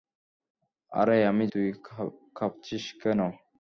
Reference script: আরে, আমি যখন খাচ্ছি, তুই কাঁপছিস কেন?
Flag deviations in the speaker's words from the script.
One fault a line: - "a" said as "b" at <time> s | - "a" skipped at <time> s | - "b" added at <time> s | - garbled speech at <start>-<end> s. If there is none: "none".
- "যখন খাচ্ছি" skipped at 1.4 s